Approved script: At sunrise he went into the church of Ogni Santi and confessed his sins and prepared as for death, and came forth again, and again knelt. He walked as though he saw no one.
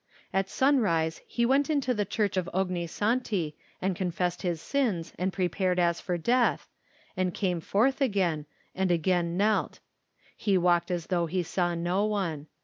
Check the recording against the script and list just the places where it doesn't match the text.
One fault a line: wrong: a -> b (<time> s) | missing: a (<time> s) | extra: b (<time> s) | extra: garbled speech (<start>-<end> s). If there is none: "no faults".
no faults